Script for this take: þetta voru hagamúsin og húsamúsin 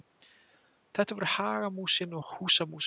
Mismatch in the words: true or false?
false